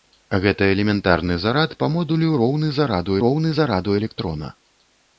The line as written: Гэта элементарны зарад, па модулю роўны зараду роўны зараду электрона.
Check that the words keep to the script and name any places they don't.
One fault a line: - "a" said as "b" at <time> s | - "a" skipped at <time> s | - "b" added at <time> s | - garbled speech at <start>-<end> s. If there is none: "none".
none